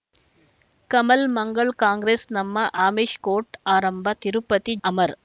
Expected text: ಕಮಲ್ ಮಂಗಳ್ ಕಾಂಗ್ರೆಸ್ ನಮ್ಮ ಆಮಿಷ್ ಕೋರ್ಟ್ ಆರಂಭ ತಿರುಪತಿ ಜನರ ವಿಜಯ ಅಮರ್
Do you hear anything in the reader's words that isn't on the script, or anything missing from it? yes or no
yes